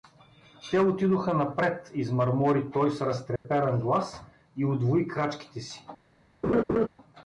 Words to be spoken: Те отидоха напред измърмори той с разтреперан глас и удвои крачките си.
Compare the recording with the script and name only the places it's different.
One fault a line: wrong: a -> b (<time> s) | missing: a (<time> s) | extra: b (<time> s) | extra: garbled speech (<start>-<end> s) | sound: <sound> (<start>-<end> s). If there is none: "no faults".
sound: dropout (3.4-3.5 s)
sound: laugh (6.4-6.9 s)